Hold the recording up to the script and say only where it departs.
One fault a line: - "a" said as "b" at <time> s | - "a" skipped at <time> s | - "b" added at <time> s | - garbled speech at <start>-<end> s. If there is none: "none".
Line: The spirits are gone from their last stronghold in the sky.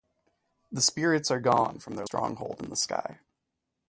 - "last" skipped at 2.1 s